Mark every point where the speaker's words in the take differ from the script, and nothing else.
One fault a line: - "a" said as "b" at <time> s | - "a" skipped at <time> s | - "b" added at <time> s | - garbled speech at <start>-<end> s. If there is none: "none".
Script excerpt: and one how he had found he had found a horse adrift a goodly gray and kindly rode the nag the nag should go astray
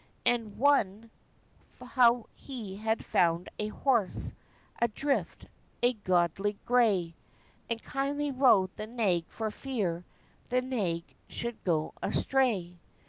- "he had found" skipped at 3.5 s
- "for fear" added at 9.3 s